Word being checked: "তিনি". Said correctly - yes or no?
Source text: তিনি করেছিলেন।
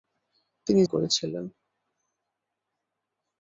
yes